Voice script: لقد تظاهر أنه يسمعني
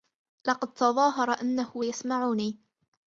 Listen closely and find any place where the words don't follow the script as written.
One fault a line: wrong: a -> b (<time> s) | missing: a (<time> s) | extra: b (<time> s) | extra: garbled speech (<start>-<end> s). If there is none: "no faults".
no faults